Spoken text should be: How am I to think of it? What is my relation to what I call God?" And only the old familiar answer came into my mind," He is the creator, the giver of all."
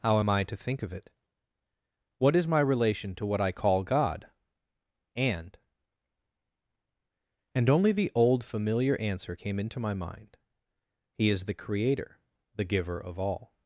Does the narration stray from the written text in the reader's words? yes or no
yes